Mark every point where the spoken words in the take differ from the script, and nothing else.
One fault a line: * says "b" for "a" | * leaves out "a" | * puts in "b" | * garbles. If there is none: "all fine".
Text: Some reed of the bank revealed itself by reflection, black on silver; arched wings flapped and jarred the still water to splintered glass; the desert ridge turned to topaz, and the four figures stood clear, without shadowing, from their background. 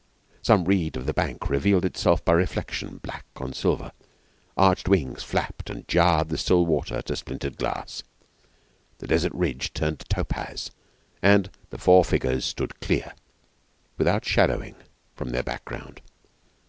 all fine